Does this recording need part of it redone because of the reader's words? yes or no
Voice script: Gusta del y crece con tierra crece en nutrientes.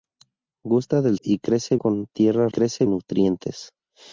no